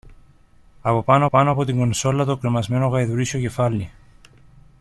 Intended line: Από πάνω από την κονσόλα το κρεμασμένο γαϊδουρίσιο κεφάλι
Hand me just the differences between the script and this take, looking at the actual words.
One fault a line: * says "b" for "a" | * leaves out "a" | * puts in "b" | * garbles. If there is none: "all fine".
* puts in "πάνω"